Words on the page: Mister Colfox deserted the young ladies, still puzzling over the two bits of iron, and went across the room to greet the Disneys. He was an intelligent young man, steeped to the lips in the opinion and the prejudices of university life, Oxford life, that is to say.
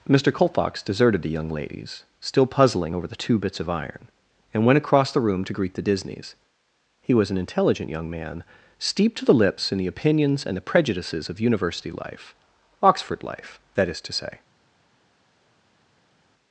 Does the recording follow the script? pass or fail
fail